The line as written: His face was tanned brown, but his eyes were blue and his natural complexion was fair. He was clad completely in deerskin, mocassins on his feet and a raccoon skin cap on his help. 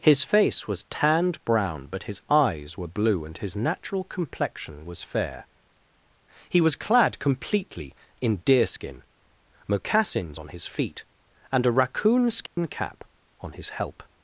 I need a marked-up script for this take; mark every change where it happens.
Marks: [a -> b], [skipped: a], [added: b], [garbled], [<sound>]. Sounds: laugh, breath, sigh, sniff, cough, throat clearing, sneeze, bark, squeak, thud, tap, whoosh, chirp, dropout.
His face was tanned brown, but his eyes were blue and his natural complexion was fair. He was clad completely in deerskin, mocassins on his feet and a raccoon skin [dropout] cap on his help.